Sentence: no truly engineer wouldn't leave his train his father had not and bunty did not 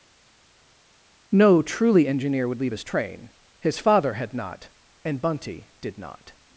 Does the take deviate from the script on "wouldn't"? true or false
true